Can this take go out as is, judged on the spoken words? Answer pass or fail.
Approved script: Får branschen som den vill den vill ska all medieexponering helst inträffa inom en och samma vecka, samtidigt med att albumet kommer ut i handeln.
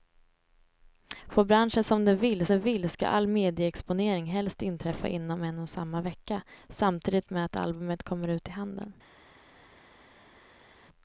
pass